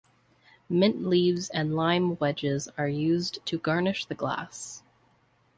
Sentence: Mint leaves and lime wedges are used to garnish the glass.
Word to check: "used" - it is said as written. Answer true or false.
true